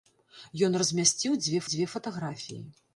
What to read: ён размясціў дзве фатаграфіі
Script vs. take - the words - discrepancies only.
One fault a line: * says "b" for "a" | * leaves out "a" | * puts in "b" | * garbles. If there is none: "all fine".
* puts in "дзве"